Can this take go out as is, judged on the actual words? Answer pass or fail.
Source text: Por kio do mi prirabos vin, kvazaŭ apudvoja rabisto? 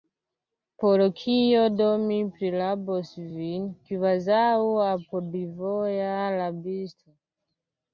pass